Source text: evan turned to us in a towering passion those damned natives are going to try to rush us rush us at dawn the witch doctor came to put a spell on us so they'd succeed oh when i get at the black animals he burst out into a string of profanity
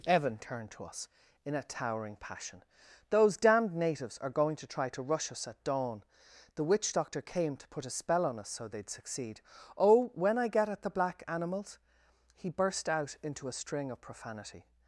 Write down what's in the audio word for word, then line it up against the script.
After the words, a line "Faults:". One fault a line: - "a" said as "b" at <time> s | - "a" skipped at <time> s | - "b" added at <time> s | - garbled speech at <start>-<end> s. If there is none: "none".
evan turned to us in a towering passion those damned natives are going to try to rush us at dawn the witch doctor came to put a spell on us so they'd succeed oh when i get at the black animals he burst out into a string of profanity
Faults:
- "rush us" skipped at 5.5 s